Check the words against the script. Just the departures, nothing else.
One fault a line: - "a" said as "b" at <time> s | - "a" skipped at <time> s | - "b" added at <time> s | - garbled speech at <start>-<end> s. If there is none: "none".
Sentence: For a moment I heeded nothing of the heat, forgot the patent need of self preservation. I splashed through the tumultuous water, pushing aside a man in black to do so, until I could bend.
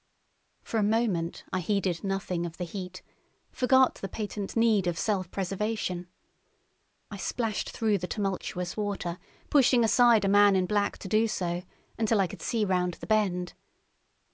- "see round the" added at 12.4 s